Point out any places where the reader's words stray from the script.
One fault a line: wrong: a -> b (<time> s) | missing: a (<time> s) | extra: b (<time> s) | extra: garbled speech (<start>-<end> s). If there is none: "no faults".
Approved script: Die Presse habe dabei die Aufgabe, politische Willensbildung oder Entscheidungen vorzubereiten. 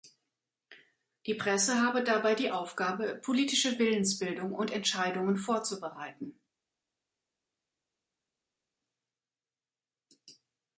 wrong: oder -> und (4.5 s)